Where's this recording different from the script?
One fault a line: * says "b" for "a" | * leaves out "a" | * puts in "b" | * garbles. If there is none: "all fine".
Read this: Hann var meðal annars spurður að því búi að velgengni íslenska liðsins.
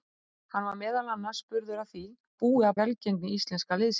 all fine